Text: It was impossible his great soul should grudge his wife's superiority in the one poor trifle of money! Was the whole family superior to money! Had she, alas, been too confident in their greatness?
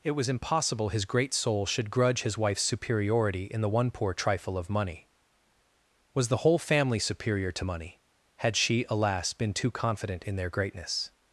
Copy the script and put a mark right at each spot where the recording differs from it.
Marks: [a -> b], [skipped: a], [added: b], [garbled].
It was impossible his great soul should grudge his wife's superiority in the one poor trifle of money! Was the whole family superior to money! Had she, alas, been too confident in their greatness?